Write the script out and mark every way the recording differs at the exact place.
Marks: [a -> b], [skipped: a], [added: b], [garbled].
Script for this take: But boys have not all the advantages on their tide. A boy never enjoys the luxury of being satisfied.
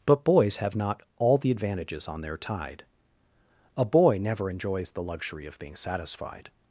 But boys have not all the advantages on their tide. A boy never enjoys the luxury of being satisfied.